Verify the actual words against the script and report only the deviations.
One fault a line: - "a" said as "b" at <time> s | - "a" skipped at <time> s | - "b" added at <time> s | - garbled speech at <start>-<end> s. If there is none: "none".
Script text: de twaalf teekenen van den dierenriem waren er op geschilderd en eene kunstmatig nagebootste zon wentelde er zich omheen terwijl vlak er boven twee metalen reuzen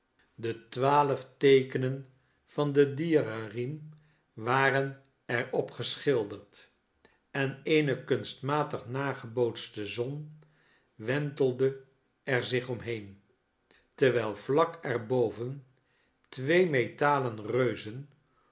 none